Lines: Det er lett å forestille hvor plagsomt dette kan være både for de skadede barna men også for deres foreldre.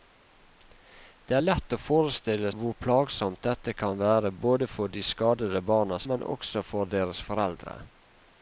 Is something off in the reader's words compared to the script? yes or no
no